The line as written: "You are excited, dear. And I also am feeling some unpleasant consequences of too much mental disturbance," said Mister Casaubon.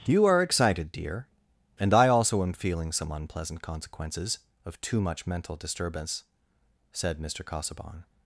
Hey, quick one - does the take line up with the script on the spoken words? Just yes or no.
yes